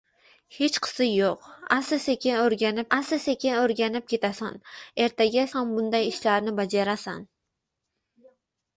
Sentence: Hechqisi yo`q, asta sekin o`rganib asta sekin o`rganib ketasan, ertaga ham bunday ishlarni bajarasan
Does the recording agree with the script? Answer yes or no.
yes